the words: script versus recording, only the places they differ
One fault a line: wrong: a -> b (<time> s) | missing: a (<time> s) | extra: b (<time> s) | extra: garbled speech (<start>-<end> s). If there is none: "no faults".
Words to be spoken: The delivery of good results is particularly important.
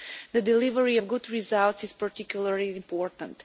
no faults